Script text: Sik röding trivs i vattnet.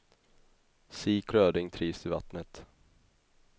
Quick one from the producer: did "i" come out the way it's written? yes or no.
yes